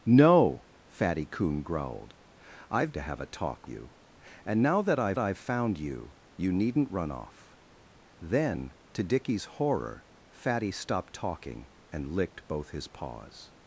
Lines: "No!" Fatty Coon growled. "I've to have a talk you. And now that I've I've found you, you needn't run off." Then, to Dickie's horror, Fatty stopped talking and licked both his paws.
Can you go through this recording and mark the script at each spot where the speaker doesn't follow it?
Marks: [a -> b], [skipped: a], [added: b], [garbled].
"No!" Fatty Coon growled. "I've to have a talk you. And now that I've I've found you, you needn't run off." Then, to Dickie's horror, Fatty stopped talking and licked both his paws.